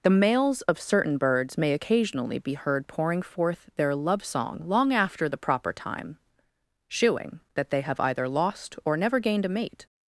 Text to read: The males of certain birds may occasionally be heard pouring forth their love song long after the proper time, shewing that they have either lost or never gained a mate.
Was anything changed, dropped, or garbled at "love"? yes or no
no